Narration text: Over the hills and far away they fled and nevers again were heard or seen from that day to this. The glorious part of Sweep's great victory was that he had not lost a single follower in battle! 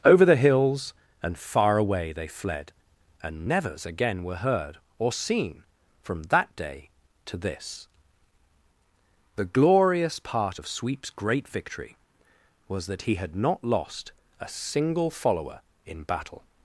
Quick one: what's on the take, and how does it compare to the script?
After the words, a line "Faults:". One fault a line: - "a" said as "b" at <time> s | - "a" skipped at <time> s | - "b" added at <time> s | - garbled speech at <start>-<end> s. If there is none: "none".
Over the hills and far away they fled and nevers again were heard or seen from that day to this. The glorious part of Sweep's great victory was that he had not lost a single follower in battle!
Faults:
none